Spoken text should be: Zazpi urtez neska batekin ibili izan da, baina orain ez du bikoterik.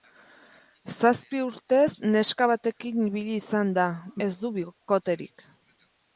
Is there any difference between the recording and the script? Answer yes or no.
yes